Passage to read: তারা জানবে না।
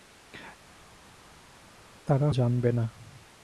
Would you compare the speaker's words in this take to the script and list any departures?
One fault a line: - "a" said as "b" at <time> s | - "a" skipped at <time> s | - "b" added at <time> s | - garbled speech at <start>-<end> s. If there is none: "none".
none